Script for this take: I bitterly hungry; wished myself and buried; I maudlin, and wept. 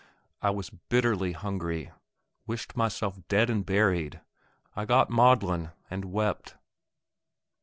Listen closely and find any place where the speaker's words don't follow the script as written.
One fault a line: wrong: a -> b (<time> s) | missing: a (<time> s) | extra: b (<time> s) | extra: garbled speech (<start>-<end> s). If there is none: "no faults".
extra: was (0.5 s)
extra: dead (3.3 s)
extra: got (4.9 s)